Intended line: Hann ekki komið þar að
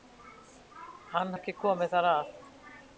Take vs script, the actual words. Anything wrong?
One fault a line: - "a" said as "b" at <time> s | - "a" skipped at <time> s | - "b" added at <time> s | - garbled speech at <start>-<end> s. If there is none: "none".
none